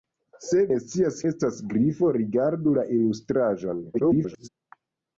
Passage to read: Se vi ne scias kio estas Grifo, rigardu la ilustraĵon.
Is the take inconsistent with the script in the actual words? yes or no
yes